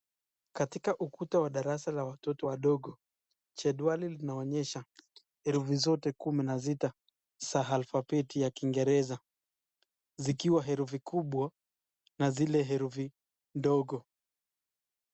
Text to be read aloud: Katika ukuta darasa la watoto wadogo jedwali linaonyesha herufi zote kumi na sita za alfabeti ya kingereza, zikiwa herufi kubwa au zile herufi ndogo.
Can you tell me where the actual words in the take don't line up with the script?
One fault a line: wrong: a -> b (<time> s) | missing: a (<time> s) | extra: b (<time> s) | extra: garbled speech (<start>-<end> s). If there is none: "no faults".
extra: wa (1.4 s)
wrong: au -> na (12.2 s)